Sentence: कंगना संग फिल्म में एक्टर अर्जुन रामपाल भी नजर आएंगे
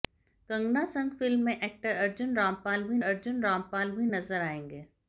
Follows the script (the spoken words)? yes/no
no